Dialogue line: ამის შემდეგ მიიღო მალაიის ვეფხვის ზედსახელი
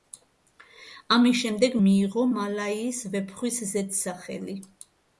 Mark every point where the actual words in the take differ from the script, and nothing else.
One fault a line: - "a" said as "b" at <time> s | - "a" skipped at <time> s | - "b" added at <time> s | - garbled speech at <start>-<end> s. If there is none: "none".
none